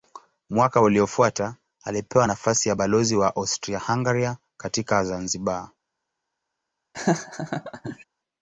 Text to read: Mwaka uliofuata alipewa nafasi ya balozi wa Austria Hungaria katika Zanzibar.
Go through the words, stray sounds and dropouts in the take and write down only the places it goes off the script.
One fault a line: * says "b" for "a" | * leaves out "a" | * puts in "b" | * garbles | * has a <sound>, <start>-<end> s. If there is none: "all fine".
* has a laugh, 6.9-8.0 s